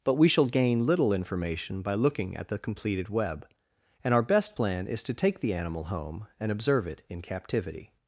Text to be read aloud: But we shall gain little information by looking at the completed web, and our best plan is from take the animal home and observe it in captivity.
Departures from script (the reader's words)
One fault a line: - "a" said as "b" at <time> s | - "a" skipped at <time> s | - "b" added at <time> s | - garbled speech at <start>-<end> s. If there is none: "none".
- "from" said as "to" at 5.0 s